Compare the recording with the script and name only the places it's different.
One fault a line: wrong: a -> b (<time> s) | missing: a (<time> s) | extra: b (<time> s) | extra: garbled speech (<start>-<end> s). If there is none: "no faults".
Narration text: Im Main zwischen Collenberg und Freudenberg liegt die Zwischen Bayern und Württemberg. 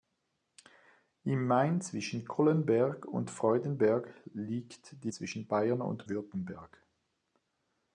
no faults